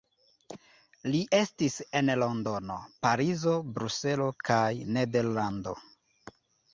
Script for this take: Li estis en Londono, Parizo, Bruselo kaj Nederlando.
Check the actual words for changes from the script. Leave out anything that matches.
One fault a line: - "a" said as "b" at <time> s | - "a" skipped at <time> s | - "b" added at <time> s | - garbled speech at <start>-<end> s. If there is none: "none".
none